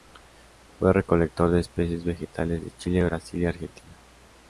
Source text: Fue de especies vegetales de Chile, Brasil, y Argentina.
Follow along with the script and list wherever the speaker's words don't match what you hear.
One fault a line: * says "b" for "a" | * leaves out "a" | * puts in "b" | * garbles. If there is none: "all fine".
* puts in "recolector"